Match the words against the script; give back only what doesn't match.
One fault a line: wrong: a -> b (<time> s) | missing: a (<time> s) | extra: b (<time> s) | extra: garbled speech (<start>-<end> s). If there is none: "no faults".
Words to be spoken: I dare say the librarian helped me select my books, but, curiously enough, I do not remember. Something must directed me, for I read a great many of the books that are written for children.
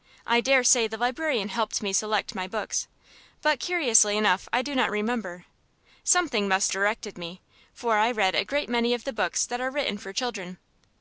no faults